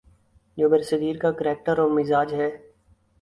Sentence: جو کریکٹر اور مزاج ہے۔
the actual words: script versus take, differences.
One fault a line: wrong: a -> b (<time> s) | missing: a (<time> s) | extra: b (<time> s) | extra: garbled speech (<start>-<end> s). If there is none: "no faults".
extra: برصغیر کا (0.7 s)